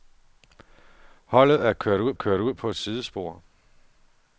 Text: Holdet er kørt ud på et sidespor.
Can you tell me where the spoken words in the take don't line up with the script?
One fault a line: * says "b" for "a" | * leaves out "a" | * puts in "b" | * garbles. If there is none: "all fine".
* puts in "kørt ud"